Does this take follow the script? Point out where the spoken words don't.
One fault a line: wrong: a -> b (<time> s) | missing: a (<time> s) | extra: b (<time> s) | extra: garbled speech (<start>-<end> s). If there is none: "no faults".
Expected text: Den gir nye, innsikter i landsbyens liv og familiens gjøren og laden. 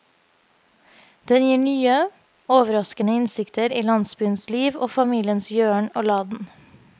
extra: overraskende (2.5 s)